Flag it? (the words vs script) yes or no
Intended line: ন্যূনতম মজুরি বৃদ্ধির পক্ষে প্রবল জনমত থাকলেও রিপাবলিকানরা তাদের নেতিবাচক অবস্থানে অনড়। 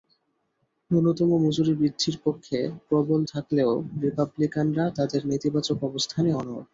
yes